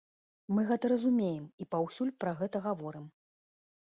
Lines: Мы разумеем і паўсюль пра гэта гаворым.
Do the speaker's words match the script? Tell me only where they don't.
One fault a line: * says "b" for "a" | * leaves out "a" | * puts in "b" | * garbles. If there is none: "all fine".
* puts in "гэта"